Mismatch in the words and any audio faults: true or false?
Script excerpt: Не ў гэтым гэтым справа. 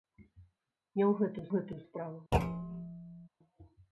true